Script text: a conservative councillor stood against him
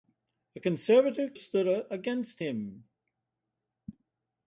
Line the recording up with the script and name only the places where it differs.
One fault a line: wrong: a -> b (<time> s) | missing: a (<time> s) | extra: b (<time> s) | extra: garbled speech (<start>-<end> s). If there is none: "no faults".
missing: councillor (1.4 s)